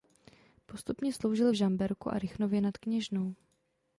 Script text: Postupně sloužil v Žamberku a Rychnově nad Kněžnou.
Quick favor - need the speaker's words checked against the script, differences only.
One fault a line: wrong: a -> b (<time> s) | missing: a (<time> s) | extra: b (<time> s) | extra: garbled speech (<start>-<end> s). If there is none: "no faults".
no faults